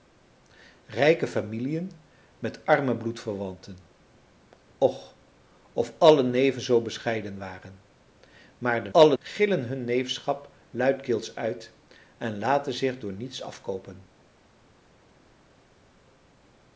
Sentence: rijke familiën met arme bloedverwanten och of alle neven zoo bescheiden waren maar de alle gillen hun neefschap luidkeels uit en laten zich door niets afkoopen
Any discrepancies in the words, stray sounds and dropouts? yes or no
no